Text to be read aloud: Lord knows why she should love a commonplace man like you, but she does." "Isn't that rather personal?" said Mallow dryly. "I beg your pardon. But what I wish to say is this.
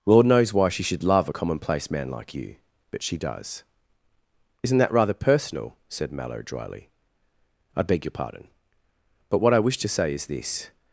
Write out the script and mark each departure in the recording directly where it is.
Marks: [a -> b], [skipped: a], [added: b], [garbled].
Lord knows why she should love a commonplace man like you, but she does." "Isn't that rather personal?" said Mallow dryly. "I beg your pardon. But what I wish to say is this.